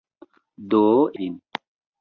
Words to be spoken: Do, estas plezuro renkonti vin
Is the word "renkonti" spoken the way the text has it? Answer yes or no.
no